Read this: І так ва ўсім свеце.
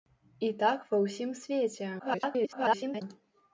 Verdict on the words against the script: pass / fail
fail